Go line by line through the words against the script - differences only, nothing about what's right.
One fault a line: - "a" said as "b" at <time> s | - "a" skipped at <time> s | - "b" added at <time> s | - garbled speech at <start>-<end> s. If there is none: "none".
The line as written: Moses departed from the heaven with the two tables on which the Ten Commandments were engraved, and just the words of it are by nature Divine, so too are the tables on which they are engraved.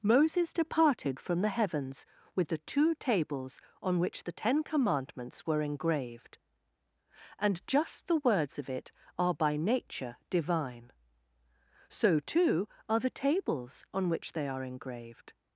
- "heaven" said as "heavens" at 1.5 s